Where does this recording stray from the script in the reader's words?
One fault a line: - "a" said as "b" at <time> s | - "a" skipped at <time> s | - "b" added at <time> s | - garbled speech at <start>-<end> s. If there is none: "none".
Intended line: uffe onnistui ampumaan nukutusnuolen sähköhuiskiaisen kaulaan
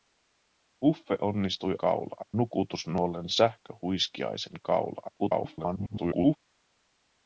- "ampumaan" said as "kaulaan" at 1.8 s
- garbled speech at 5.2-6.4 s